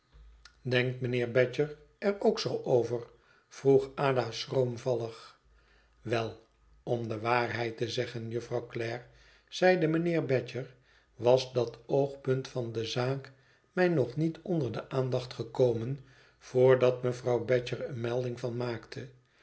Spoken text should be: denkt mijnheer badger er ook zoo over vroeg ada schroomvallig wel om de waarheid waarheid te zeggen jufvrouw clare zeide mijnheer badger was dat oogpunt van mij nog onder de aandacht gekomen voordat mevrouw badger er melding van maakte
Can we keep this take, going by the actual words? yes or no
no